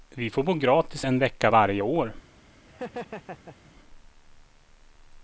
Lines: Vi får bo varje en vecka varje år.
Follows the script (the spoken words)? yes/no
no